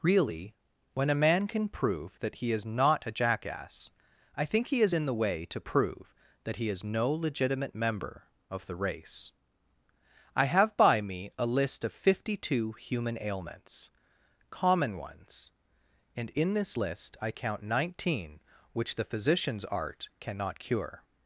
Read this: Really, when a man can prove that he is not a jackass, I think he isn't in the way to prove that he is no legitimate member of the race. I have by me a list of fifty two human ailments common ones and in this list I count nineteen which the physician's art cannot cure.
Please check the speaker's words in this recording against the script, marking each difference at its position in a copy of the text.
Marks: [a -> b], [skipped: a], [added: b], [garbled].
Really, when a man can prove that he is not a jackass, I think he [isn't -> is] in the way to prove that he is no legitimate member of the race. I have by me a list of fifty two human ailments common ones and in this list I count nineteen which the physician's art cannot cure.